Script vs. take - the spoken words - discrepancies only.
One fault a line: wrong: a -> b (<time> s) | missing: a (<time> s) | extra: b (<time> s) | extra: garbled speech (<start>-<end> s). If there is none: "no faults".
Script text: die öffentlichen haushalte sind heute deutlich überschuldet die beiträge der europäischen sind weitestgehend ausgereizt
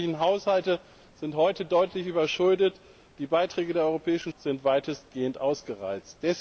no faults